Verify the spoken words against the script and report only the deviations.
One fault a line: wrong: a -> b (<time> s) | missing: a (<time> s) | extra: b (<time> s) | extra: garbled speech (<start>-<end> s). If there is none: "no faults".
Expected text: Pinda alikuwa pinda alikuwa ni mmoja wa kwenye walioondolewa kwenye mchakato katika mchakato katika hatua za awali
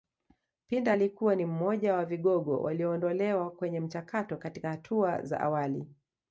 missing: pinda alikuwa (1.3 s)
wrong: kwenye -> vigogo (2.0 s)
missing: mchakato katika (4.7 s)